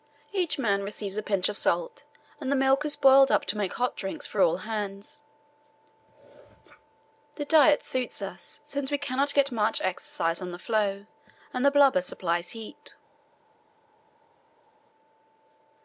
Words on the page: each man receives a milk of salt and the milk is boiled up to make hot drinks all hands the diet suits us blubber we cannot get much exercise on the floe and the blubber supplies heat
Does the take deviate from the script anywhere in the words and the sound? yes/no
yes